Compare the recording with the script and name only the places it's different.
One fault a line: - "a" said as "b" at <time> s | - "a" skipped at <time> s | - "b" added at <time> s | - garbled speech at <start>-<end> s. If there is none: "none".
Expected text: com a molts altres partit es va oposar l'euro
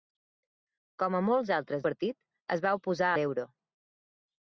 none